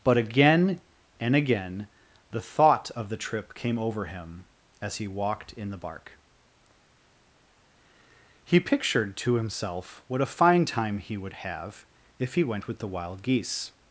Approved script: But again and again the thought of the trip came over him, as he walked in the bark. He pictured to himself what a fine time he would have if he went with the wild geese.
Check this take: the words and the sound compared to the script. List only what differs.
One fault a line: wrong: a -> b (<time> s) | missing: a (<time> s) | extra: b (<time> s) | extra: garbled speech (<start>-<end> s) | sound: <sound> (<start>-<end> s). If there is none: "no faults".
no faults